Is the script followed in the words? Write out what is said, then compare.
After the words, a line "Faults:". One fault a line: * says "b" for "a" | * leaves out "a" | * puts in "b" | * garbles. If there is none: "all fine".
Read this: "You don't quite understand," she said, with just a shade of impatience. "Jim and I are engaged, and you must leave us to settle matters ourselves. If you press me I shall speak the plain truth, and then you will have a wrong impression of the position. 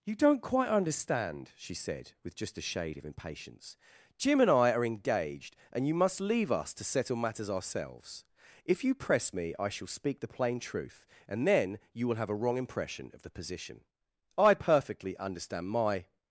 "You don't quite understand," she said, with just a shade of impatience. "Jim and I are engaged, and you must leave us to settle matters ourselves. If you press me I shall speak the plain truth, and then you will have a wrong impression of the position. I perfectly understand my
Faults:
* puts in "I perfectly understand my"